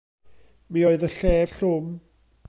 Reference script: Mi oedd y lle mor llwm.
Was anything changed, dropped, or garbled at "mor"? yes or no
yes